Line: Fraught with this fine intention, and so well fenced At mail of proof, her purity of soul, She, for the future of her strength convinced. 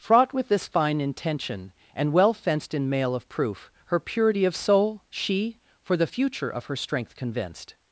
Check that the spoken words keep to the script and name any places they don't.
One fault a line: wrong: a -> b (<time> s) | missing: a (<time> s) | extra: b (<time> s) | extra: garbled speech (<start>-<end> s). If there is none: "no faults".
missing: so (2.1 s)
wrong: At -> In (2.7 s)